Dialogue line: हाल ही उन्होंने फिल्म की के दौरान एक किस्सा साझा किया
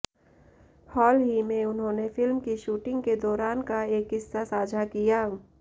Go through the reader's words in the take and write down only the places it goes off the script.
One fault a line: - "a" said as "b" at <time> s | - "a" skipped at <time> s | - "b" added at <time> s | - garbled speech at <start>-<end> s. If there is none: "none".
- "में" added at 1.4 s
- "शूटिंग" added at 2.6 s
- "का" added at 3.6 s